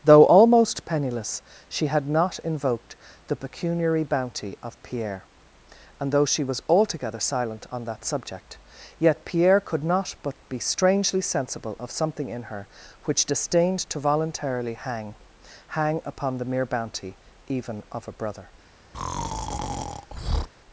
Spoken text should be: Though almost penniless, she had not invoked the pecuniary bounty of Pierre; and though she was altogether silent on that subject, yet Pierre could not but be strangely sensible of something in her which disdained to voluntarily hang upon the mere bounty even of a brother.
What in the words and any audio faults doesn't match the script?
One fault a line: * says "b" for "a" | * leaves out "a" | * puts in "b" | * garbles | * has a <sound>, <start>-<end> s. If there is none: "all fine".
* puts in "hang"
* has a breath, 18.9-20.5 s